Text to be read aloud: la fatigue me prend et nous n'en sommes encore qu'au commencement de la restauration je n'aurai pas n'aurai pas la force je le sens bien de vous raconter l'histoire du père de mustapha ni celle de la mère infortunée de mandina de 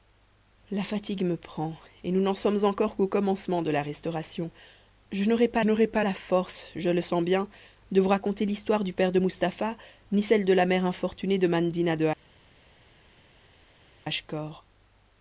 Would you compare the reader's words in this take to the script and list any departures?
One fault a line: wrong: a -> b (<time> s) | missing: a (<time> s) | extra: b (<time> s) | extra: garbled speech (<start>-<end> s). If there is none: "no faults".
no faults